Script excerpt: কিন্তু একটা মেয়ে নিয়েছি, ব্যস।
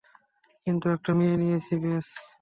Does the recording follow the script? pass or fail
pass